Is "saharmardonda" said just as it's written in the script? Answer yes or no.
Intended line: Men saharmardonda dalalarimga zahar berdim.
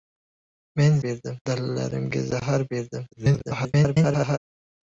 no